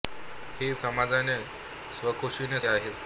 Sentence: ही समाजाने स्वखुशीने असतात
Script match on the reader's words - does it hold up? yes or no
yes